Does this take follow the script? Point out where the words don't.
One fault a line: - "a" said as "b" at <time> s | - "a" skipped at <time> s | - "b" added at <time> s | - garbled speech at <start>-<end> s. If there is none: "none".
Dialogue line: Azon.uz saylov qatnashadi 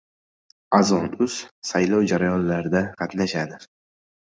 - "jarayonlarida" added at 2.1 s